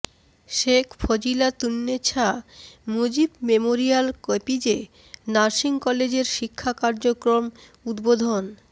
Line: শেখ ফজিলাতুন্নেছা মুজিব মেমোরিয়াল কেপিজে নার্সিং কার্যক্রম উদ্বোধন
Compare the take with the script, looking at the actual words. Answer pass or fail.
fail